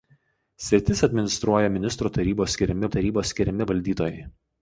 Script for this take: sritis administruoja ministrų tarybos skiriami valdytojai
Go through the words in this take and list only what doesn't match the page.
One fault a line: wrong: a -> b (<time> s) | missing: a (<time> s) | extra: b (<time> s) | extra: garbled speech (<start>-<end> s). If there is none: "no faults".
extra: tarybos skiriami (2.9 s)